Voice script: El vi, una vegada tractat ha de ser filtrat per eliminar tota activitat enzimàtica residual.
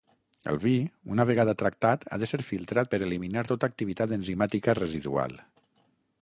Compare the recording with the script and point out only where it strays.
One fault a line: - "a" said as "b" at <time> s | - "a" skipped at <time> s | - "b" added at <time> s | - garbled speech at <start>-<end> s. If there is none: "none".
none